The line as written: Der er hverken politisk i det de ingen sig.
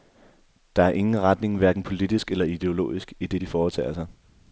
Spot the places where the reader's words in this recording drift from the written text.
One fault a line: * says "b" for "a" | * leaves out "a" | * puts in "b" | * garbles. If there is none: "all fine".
* puts in "ingen retning"
* puts in "eller ideologisk"
* says "foretager" for "ingen"